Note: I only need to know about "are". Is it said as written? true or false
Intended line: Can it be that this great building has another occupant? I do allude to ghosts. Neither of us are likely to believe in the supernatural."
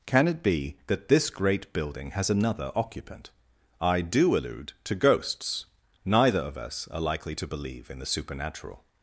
true